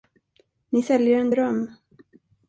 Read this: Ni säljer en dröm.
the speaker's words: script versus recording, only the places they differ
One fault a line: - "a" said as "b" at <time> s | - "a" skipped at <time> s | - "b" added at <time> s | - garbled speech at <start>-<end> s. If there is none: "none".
none